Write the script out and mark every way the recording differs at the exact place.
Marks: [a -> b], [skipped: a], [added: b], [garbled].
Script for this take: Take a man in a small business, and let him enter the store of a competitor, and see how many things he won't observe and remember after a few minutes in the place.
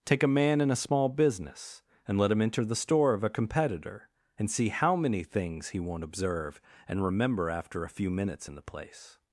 Take a man in a small business, and let him enter the store of a competitor, and see how many things he won't observe and remember after a few minutes in the place.